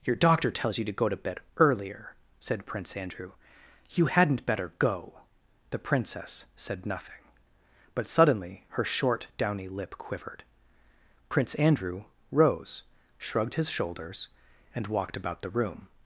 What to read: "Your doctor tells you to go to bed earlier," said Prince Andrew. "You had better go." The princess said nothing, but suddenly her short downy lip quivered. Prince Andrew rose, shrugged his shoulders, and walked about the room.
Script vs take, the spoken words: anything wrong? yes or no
yes